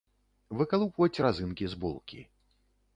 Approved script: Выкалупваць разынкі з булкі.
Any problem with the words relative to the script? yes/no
no